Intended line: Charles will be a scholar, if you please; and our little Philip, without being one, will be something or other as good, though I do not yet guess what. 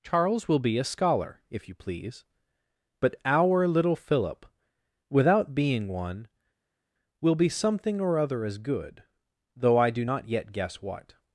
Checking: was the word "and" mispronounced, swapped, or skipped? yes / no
yes